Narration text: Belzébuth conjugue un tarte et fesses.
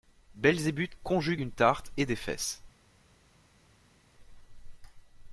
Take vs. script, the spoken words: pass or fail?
fail